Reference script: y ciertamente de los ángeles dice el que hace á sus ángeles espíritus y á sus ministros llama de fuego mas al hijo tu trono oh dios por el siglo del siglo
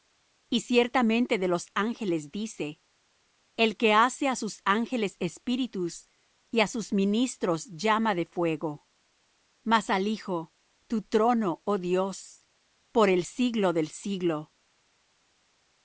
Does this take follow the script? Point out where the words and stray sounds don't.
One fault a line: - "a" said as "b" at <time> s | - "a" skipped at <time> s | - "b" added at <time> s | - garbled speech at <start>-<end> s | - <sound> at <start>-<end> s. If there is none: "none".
none